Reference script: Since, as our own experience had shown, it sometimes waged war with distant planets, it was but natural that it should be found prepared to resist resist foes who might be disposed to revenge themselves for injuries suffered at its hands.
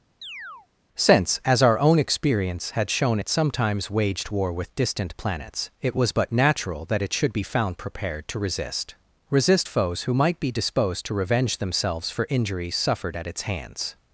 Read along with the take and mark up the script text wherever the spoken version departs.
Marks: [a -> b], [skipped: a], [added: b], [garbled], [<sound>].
[chirp] Since, as our own experience had shown, it sometimes waged war with distant planets, it was but natural that it should be found prepared to resist resist foes who might be disposed to revenge themselves for injuries suffered at its hands.